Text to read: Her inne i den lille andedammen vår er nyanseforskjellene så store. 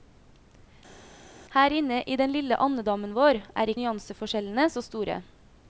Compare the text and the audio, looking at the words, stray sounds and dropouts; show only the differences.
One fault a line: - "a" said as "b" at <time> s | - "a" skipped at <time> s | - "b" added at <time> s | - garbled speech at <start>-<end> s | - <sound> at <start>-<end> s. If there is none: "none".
none